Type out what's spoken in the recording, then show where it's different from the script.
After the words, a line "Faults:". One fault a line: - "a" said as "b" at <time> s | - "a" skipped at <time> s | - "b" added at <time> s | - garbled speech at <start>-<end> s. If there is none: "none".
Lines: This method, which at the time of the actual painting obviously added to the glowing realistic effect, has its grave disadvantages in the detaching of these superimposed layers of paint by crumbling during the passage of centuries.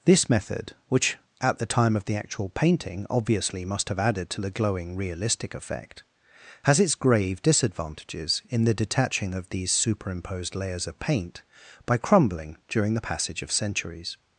This method, which at the time of the actual painting obviously must have added to the glowing realistic effect, has its grave disadvantages in the detaching of these superimposed layers of paint by crumbling during the passage of centuries.
Faults:
- "must have" added at 3.6 s